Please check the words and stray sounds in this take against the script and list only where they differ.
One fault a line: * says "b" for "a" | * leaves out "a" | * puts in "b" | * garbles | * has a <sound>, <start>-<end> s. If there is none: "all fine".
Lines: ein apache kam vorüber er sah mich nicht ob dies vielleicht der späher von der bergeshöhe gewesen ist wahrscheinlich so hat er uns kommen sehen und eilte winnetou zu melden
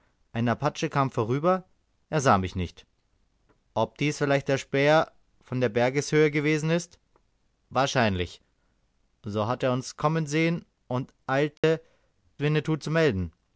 * has a dropout, 11.6-11.6 s